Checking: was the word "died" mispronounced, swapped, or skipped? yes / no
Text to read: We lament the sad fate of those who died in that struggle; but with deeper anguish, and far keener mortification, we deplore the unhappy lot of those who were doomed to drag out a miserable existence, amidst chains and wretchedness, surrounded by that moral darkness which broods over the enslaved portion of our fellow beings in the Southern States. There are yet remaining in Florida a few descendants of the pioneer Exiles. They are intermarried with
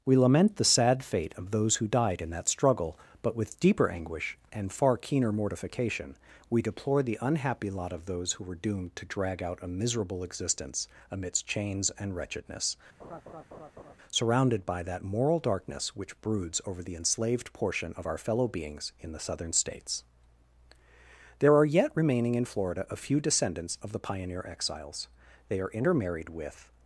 no